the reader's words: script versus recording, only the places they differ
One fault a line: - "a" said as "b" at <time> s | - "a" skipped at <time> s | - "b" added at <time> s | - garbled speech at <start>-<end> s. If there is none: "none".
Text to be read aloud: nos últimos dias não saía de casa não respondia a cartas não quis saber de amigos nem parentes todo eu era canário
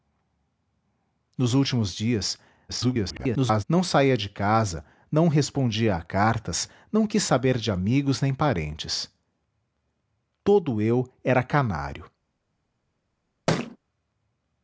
- garbled speech at 2.7-3.6 s